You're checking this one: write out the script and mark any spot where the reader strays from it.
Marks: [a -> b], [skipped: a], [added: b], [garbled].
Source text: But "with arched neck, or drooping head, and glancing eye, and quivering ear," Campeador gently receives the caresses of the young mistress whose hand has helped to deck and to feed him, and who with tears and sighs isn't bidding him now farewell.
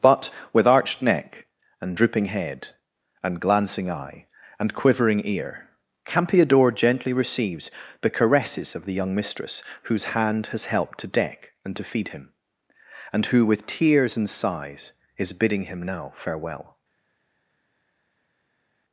But "with arched neck, [or -> and] drooping head, and glancing eye, and quivering ear," Campeador gently receives the caresses of the young mistress whose hand has helped to deck and to feed him, and who with tears and sighs [isn't -> is] bidding him now farewell.